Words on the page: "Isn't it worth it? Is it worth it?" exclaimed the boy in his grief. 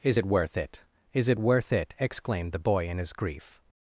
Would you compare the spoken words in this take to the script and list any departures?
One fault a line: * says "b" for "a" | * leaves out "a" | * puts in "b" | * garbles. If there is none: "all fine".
* says "Is" for "Isn't"